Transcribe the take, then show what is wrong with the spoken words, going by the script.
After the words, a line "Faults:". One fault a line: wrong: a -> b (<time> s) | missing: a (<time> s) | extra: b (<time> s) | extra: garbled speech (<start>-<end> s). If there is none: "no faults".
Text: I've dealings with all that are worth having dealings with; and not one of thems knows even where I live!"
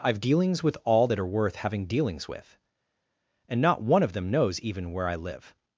I've dealings with all that are worth having dealings with; and not one of them knows even where I live!"
Faults:
wrong: thems -> them (4.1 s)